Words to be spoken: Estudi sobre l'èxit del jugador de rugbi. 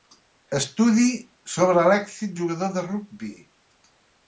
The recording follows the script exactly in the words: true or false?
false